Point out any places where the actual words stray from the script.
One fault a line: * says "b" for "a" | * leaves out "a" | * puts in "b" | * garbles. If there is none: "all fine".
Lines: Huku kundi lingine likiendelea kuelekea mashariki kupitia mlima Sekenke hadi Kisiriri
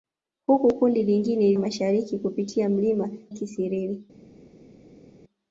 * leaves out "likiendelea kuelekea"
* leaves out "Sekenke hadi"